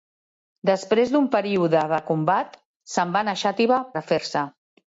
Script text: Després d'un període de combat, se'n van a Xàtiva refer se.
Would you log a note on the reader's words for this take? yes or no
no